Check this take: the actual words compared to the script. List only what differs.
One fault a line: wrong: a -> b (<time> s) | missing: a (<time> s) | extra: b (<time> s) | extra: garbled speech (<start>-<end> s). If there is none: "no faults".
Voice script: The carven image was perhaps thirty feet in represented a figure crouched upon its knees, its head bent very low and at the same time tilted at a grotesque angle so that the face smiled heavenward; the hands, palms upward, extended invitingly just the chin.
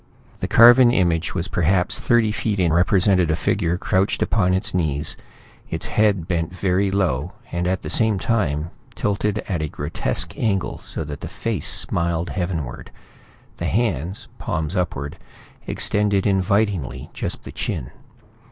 no faults